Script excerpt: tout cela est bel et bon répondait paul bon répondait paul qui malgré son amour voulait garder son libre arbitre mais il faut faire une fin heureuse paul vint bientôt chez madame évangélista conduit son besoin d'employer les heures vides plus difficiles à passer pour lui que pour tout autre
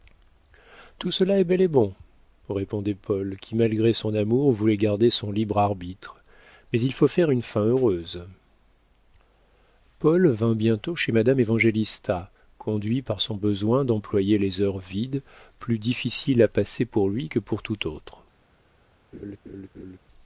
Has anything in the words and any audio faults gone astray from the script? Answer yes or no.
yes